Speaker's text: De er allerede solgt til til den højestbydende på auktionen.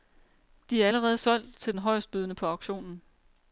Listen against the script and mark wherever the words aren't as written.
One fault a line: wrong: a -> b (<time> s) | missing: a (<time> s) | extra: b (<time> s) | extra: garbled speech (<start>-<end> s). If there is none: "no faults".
missing: til (1.7 s)